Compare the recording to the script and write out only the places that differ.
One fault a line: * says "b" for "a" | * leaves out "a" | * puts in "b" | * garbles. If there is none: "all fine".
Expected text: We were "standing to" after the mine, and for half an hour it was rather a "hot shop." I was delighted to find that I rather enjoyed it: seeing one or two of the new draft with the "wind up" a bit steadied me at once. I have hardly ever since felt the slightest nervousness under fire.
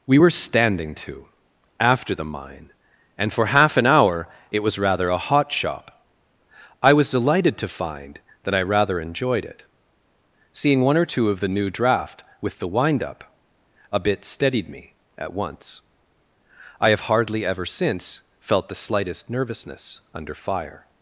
all fine